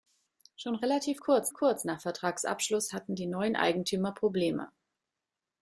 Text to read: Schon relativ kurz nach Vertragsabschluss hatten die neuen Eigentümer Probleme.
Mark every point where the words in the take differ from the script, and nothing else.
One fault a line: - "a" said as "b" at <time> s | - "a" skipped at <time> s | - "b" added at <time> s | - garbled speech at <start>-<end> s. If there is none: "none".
- "kurz" added at 1.5 s